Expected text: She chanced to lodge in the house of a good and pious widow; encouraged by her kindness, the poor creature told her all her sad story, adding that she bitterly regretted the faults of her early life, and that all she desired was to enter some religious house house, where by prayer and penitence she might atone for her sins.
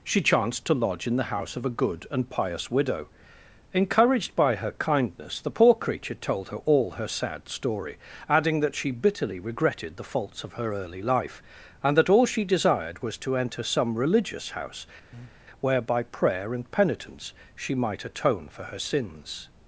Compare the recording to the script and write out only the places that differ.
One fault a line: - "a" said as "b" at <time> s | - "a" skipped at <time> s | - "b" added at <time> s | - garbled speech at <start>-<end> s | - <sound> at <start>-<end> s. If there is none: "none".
- "house" skipped at 14.9 s
- breath at 15.1-15.4 s